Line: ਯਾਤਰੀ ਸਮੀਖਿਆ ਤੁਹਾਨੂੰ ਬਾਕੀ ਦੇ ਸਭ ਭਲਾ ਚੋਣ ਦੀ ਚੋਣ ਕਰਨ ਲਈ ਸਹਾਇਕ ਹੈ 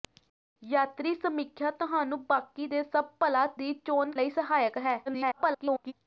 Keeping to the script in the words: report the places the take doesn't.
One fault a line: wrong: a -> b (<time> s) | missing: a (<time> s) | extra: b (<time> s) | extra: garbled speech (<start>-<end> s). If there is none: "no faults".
missing: ਚੋਣ (3.5 s)
missing: ਕਰਨ (4.1 s)
extra: garbled speech (5.1-5.9 s)